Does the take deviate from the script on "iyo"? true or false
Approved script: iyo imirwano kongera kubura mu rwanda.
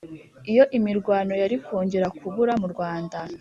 false